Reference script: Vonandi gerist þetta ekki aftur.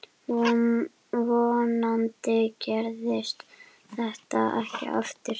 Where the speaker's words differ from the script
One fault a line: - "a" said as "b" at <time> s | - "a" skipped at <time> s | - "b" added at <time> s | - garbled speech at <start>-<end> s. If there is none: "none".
none